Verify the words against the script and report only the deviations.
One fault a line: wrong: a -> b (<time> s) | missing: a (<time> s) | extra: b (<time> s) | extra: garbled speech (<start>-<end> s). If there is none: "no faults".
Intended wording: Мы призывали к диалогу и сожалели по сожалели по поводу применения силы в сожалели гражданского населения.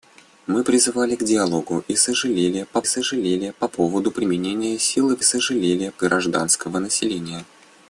no faults